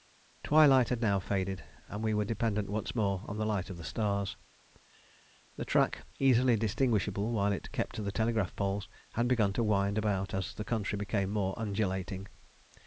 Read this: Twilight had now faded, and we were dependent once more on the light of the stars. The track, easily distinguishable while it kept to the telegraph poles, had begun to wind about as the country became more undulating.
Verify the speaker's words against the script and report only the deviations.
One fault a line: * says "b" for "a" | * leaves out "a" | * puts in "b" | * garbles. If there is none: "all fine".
all fine